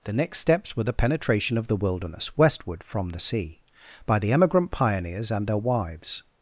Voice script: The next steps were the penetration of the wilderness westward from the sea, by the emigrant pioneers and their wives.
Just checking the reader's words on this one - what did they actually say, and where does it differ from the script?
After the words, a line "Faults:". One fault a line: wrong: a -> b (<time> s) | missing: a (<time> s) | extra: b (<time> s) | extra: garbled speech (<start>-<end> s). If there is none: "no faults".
The next steps were the penetration of the wilderness westward from the sea, by the emigrant pioneers and their wives.
Faults:
no faults